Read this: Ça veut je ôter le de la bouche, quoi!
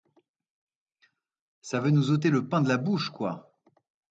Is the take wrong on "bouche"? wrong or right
right